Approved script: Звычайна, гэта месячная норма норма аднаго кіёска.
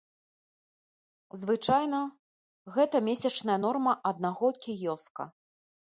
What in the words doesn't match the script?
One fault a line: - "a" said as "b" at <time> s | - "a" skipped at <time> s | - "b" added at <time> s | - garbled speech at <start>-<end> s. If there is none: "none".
- "норма" skipped at 3.9 s